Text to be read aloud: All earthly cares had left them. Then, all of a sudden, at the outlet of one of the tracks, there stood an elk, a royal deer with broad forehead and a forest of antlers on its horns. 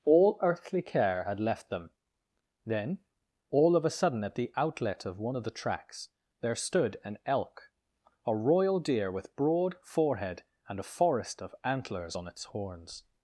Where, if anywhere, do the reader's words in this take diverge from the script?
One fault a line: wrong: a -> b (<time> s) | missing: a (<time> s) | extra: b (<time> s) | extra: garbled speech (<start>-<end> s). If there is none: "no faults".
wrong: cares -> care (0.8 s)